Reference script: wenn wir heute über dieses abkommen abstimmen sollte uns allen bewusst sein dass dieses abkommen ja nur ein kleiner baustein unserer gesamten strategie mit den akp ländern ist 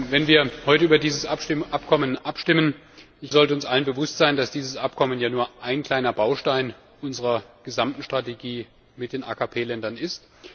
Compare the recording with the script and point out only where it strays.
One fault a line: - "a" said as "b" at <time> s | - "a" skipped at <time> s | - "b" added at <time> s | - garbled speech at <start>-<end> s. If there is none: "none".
none